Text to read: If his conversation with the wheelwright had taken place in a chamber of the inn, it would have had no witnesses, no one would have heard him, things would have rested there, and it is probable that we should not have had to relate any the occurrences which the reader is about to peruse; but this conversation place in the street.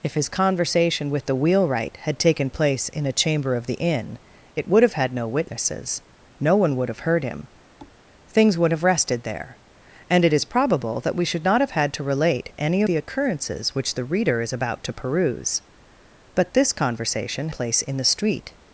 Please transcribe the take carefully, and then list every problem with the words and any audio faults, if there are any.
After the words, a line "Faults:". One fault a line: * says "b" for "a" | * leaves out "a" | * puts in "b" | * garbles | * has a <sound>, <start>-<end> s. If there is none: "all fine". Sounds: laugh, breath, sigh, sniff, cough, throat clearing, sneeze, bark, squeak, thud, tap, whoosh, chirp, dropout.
If his conversation with the wheelwright had taken place in a chamber of the inn, it would have had no witnesses, no one would have heard him, things would have rested there, and it is probable that we should not have had to relate any the occurrences which the reader is about to peruse; but this conversation place in the street.
Faults:
* has a thud, 7.8-8.0 s